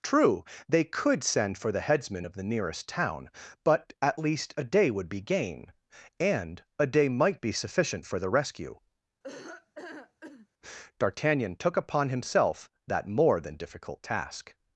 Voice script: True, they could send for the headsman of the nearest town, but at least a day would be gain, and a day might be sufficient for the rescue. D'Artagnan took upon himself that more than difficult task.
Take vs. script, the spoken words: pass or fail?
pass